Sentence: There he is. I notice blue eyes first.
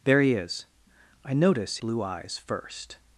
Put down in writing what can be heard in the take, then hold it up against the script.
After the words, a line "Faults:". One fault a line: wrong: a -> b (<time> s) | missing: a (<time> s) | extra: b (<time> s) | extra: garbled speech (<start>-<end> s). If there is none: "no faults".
There he is. I notice blue eyes first.
Faults:
no faults